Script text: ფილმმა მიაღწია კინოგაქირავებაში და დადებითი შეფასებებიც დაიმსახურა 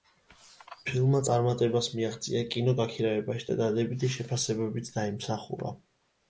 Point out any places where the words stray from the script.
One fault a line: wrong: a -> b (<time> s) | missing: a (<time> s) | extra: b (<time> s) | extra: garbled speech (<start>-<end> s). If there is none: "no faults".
extra: წარმატებას (1.2 s)